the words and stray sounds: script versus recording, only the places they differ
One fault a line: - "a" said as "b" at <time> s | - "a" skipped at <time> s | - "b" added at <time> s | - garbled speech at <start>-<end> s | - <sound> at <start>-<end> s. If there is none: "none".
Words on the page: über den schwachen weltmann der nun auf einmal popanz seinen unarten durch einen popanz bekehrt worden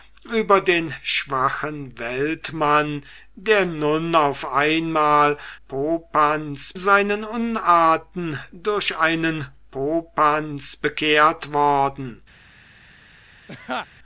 - laugh at 13.5-13.9 s